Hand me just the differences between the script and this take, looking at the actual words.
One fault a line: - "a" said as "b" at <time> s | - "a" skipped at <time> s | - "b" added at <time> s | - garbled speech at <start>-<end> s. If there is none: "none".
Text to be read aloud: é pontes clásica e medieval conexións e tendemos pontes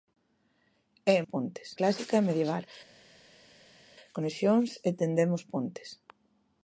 none